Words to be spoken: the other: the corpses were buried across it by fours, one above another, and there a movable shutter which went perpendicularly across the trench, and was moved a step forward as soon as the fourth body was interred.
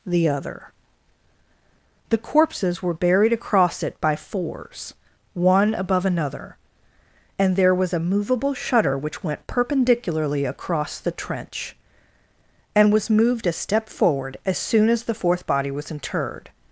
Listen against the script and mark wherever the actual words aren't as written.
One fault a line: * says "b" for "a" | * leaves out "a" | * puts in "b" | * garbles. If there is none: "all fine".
* puts in "was"